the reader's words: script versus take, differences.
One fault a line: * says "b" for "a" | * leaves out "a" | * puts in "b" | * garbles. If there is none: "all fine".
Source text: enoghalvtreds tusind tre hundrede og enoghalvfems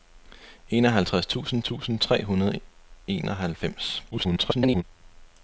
* puts in "tusind"
* garbles